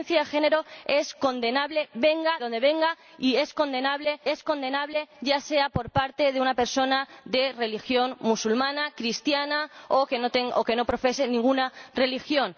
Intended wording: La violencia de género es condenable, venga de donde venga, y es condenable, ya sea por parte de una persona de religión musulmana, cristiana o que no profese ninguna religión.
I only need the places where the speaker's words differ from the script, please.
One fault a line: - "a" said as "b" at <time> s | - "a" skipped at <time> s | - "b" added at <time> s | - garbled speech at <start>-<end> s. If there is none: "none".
- "de" skipped at 2.4 s
- "es condenable" added at 4.3 s